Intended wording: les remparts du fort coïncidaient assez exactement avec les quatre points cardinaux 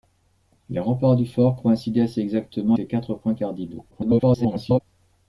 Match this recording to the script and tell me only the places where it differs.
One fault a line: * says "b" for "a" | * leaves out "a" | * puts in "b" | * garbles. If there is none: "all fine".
* leaves out "avec"
* garbles